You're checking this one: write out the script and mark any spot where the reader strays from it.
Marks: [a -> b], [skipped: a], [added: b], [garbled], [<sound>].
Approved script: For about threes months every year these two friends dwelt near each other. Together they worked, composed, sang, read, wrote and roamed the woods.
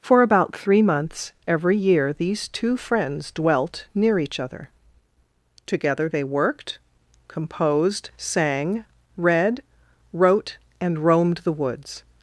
For about [threes -> three] months every year these two friends dwelt near each other. Together they worked, composed, sang, read, wrote and roamed the woods.